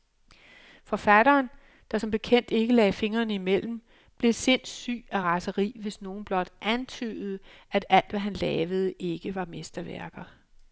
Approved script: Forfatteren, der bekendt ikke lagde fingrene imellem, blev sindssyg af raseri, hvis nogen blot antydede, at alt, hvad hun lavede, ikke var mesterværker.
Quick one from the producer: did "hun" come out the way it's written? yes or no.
no